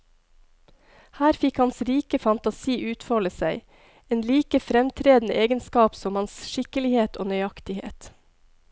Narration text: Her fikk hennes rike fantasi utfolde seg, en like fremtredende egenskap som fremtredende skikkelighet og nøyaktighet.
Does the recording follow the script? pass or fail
fail